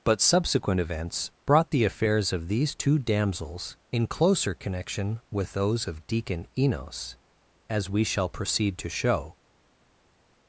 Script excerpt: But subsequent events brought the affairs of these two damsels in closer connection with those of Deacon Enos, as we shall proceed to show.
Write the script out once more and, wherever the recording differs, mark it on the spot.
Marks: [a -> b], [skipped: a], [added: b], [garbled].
But subsequent events brought the affairs of these two damsels in closer connection with those of Deacon Enos, as we shall proceed to show.